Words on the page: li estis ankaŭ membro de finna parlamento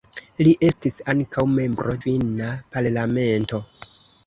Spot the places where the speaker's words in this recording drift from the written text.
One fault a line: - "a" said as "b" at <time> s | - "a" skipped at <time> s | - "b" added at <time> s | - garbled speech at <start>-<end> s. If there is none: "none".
- "de" skipped at 2.0 s